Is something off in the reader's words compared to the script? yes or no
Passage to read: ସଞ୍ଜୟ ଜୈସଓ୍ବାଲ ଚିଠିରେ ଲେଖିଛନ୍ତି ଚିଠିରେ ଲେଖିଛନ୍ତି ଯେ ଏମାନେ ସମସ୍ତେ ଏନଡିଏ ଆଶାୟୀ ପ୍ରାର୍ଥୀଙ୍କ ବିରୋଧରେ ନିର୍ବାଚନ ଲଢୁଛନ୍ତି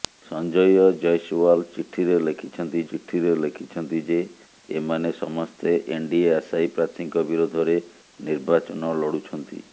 no